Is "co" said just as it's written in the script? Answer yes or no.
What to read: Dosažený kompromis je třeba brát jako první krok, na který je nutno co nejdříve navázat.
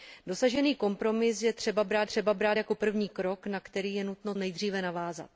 no